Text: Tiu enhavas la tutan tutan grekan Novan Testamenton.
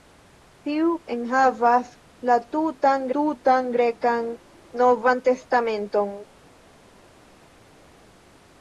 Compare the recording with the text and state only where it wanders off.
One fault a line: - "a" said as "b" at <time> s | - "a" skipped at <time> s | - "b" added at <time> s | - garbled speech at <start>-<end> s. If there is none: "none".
none